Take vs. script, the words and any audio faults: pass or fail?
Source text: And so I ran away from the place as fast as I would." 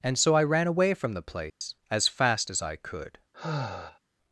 fail